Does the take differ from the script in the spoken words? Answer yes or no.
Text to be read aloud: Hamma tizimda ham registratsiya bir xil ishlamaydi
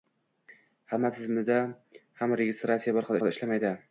yes